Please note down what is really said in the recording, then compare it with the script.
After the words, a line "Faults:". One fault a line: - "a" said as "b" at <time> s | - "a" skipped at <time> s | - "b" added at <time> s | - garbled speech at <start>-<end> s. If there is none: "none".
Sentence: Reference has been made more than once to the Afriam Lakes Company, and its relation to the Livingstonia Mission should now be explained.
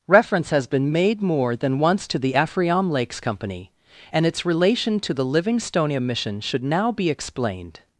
Reference has been made more than once to the Afriam Lakes Company, and its relation to the Livingstonia Mission should now be explained.
Faults:
none